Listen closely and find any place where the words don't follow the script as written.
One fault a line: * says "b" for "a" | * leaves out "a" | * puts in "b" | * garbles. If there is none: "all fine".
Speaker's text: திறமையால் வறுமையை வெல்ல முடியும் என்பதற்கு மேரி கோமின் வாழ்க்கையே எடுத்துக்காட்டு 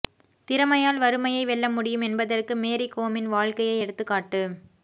all fine